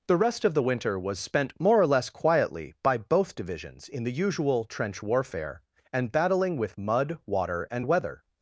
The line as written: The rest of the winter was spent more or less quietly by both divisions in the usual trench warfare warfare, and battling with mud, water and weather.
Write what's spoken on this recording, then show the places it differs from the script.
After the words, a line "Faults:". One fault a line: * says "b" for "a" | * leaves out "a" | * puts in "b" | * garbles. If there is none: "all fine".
The rest of the winter was spent more or less quietly by both divisions in the usual trench warfare, and battling with mud, water and weather.
Faults:
* leaves out "warfare"